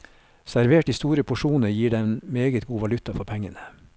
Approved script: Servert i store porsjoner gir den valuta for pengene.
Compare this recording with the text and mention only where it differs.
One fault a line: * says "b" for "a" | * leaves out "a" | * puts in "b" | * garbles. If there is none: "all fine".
* puts in "meget god"